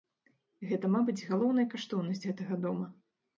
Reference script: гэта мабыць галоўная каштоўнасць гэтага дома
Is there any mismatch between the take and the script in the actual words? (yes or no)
no